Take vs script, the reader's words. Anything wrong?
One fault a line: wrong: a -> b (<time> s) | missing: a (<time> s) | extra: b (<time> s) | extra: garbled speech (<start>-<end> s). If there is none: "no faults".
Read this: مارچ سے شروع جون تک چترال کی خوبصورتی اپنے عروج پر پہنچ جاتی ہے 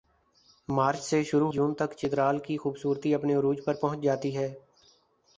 no faults